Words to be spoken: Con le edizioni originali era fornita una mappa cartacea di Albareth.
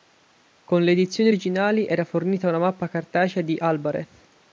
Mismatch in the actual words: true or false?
false